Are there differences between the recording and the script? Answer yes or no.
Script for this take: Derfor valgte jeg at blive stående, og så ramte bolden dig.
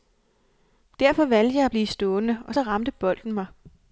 yes